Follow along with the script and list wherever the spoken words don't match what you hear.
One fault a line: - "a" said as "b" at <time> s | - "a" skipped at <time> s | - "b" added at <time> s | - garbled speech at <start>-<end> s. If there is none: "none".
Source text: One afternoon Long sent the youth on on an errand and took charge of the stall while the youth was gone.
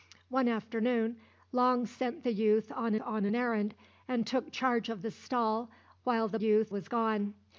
none